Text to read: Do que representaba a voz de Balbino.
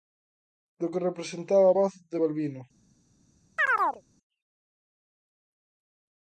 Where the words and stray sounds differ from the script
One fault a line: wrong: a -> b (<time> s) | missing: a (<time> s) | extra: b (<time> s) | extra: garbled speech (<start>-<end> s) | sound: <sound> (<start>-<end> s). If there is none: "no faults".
sound: chirp (3.6-4.0 s)